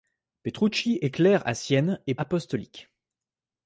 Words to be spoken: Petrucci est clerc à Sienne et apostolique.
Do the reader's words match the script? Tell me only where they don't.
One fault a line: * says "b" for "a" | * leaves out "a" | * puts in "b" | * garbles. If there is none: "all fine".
all fine